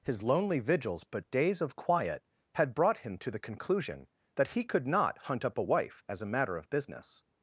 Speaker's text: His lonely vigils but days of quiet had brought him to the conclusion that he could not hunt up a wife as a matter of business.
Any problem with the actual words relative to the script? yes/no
no